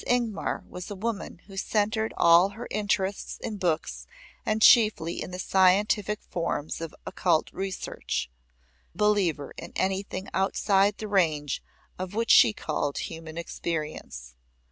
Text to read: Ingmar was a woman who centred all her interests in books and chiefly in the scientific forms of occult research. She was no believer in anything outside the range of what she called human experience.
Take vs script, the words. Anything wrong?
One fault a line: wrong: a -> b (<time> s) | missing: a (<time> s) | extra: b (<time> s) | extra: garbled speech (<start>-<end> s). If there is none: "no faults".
missing: She was no (8.3 s)